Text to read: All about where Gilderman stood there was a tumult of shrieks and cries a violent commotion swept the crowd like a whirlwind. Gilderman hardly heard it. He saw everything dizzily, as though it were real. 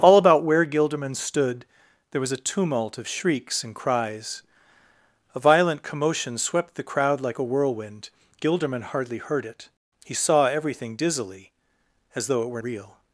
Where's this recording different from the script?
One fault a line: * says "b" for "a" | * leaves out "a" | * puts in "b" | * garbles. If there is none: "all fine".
all fine